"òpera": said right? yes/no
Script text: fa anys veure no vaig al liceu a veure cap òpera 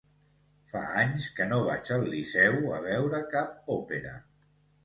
yes